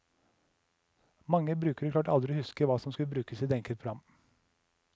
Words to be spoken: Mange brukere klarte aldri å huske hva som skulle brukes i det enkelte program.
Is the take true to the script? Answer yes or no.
yes